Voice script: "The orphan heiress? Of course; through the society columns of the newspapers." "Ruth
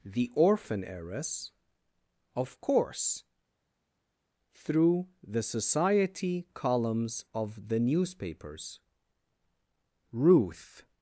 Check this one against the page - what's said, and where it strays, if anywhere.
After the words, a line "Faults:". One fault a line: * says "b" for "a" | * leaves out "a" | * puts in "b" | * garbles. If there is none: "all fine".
"The orphan heiress? Of course; through the society columns of the newspapers." "Ruth
Faults:
all fine